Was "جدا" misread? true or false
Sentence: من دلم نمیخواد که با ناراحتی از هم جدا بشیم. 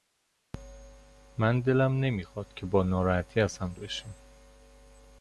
true